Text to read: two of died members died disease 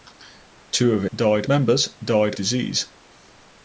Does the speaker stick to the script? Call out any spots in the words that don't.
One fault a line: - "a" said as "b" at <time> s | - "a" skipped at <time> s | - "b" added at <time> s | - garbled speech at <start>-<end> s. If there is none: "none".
none